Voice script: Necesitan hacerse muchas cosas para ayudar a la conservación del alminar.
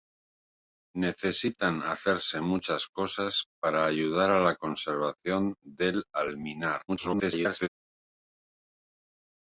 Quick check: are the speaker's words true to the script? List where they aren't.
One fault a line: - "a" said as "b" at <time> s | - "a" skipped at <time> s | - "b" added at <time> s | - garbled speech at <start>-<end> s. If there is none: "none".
- garbled speech at 6.9-7.7 s